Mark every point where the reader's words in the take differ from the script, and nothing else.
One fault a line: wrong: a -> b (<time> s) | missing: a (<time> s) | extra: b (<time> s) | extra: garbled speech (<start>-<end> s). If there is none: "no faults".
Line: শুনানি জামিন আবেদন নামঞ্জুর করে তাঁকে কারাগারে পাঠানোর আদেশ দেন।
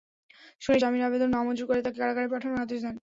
no faults